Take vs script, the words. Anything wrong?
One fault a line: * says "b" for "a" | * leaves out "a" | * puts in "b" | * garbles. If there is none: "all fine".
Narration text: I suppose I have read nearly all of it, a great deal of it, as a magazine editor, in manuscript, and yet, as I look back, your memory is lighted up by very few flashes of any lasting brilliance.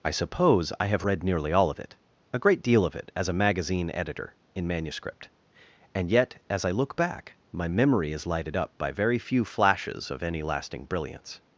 * says "my" for "your"